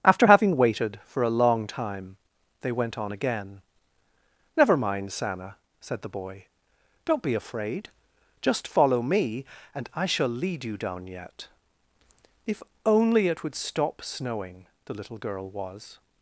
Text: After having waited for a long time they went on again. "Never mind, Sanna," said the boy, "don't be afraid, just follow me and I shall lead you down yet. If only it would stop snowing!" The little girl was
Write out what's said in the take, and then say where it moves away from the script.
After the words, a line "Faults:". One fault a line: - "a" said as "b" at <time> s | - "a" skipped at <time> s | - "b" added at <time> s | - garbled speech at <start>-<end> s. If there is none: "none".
After having waited for a long time they went on again. "Never mind, Sanna," said the boy, "don't be afraid, just follow me and I shall lead you down yet. If only it would stop snowing!" The little girl was
Faults:
none